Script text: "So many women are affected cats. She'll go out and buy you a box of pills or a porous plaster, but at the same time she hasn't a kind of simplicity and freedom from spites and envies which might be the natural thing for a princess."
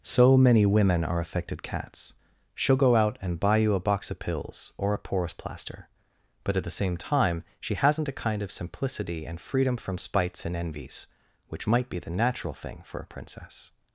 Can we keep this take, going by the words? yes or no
yes